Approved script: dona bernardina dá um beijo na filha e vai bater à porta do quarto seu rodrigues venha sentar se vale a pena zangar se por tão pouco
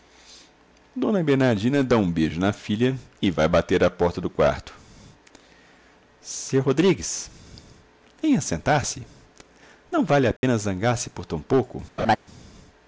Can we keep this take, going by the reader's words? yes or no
no